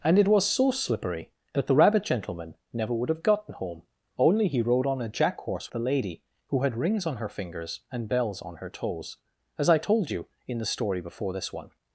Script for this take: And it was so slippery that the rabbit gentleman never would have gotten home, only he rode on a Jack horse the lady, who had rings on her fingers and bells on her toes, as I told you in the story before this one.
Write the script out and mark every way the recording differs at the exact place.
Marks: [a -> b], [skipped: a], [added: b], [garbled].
And it was so slippery that the rabbit gentleman never would have gotten home, only he rode on a Jack horse the lady, who had rings on her fingers and bells on her toes, as I told you in the story before this one.